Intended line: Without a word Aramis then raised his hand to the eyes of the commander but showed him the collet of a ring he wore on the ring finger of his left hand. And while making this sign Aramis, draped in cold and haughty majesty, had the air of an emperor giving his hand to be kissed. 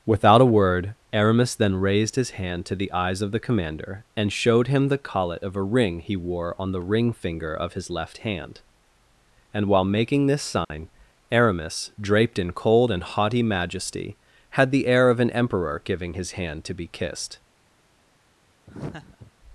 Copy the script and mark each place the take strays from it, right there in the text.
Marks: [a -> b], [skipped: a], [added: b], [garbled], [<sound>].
Without a word Aramis then raised his hand to the eyes of the commander [but -> and] showed him the collet of a ring he wore on the ring finger of his left hand. And while making this sign [dropout] Aramis, draped in cold and haughty majesty, had the air of an emperor giving his hand to be kissed. [laugh]